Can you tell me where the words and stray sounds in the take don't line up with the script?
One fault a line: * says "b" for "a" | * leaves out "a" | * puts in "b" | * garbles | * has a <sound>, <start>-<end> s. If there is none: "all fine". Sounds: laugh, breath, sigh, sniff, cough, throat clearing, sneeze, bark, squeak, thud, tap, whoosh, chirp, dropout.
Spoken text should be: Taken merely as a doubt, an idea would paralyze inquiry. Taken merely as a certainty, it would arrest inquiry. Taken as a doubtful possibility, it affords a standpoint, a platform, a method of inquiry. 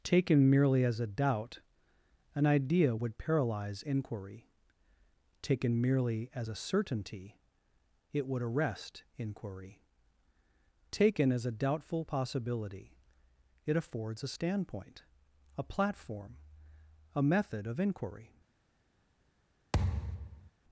* has a thud, 19.7-20.5 s